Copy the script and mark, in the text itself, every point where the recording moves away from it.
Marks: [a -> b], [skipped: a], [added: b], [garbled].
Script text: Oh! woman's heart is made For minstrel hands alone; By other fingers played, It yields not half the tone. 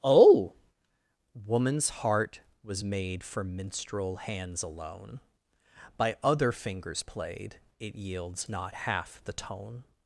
Oh! woman's heart [is -> was] made For minstrel hands alone; By other fingers played, It yields not half the tone.